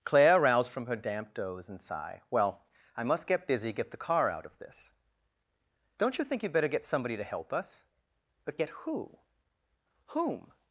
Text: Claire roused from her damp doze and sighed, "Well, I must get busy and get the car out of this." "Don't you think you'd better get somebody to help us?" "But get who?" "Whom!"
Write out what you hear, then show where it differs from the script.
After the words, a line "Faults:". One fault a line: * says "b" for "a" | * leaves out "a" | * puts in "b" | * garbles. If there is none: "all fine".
Claire roused from her damp doze and sigh, "Well, I must get busy get the car out of this." "Don't you think you'd better get somebody to help us?" "But get who?" "Whom!"
Faults:
* says "sigh" for "sighed"
* leaves out "and"